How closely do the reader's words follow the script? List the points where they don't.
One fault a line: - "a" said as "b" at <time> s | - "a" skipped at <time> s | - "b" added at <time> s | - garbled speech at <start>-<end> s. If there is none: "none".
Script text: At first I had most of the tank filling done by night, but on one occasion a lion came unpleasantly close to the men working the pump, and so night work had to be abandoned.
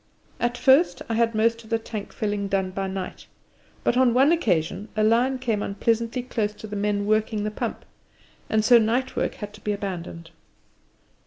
none